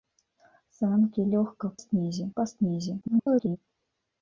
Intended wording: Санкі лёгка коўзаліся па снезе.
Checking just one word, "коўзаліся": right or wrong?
wrong